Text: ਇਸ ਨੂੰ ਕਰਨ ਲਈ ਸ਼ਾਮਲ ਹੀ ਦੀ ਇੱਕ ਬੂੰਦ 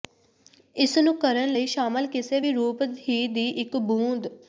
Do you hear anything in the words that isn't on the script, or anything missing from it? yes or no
yes